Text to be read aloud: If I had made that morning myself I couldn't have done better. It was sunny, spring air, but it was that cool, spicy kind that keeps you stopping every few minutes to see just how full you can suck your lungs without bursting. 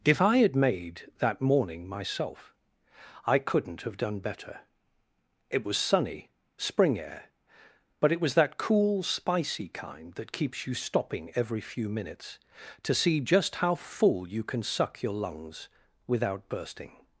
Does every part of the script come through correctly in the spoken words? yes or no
yes